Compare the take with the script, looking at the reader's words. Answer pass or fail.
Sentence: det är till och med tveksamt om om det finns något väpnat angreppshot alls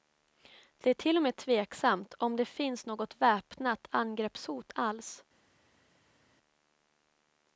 fail